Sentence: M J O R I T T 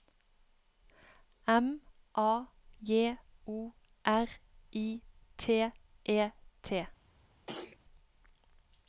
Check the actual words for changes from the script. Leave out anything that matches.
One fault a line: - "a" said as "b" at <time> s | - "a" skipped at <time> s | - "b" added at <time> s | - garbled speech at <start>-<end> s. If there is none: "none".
- "A" added at 2.1 s
- "E" added at 6.0 s